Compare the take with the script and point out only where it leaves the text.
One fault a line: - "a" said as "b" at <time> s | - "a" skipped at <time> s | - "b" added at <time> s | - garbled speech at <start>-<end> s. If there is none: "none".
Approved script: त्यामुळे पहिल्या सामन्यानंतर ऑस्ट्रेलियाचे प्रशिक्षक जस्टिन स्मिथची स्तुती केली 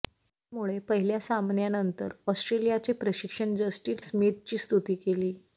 none